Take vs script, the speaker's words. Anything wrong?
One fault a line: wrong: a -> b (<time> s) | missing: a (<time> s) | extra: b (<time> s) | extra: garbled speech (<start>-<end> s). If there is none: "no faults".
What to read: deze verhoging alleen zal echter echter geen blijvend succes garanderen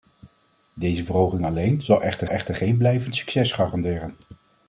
no faults